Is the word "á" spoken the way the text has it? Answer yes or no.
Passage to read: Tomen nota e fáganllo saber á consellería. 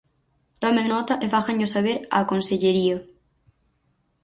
yes